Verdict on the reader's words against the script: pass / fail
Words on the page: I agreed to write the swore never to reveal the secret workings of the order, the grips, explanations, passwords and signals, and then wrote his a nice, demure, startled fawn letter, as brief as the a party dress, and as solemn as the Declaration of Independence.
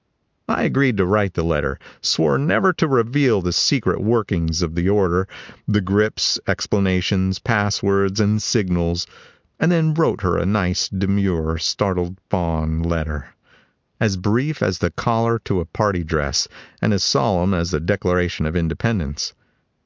fail